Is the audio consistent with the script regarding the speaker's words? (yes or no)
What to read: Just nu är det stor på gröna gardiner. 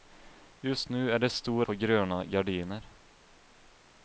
yes